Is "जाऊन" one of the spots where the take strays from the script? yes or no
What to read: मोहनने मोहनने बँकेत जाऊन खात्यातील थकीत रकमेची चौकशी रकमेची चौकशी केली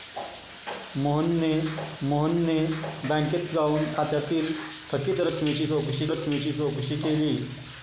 no